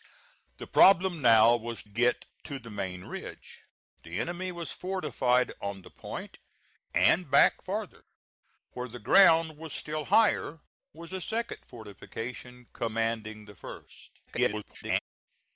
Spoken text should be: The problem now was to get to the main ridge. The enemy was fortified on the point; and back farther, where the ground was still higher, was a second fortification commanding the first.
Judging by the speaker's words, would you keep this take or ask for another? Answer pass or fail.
fail